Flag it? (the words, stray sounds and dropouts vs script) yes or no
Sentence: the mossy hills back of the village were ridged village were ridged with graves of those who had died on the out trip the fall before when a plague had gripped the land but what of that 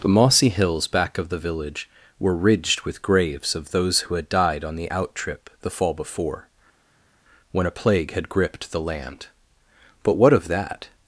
yes